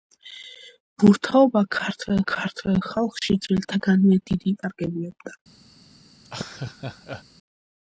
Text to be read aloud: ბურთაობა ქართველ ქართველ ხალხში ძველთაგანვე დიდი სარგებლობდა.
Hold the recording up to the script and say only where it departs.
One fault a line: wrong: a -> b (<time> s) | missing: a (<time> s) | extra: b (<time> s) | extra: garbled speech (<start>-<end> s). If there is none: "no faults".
no faults